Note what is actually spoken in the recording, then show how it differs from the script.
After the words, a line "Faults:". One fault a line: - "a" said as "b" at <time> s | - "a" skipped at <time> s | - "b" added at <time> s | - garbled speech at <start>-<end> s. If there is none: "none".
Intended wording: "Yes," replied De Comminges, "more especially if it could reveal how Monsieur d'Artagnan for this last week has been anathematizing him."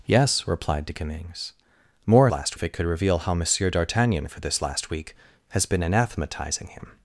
"Yes," replied De Comminges, "more last if it could reveal how Monsieur d'Artagnan for this last week has been anathematizing him."
Faults:
- "especially" said as "last" at 2.3 s